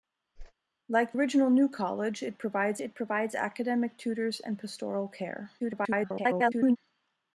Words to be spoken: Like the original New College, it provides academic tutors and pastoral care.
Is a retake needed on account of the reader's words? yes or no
yes